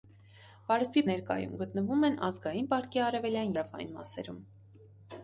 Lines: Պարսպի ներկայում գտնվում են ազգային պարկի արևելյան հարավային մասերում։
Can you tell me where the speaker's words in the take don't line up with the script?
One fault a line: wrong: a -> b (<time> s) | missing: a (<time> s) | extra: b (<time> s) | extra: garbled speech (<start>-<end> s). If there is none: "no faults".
no faults